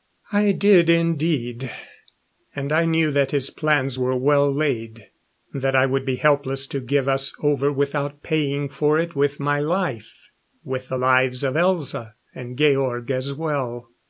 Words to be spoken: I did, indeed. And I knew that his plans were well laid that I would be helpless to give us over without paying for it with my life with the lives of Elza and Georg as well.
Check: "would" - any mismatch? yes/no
no